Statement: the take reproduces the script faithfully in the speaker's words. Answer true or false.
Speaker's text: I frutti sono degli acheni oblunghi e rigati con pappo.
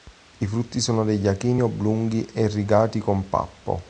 true